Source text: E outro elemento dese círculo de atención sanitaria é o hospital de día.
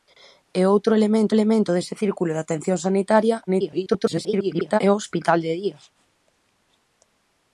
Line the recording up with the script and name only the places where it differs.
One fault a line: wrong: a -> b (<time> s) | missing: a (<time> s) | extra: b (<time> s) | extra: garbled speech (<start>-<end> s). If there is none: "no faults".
extra: elemento (1.4 s)
extra: garbled speech (3.5-4.8 s)